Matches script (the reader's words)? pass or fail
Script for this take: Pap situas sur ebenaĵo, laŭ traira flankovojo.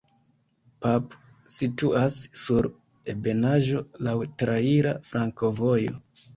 pass